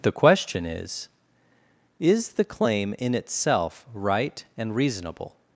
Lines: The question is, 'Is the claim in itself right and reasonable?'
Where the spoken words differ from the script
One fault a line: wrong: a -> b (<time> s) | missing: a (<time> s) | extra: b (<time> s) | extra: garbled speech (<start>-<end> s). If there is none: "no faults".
no faults